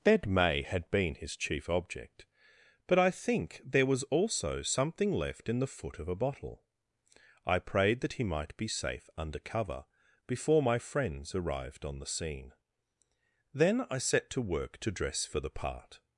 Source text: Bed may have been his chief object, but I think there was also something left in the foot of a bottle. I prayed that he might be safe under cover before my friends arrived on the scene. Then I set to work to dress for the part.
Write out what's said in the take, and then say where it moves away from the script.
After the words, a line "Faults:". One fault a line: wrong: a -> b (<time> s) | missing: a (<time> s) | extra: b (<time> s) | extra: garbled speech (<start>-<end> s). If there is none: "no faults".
Bed may had been his chief object, but I think there was also something left in the foot of a bottle. I prayed that he might be safe under cover before my friends arrived on the scene. Then I set to work to dress for the part.
Faults:
wrong: have -> had (0.6 s)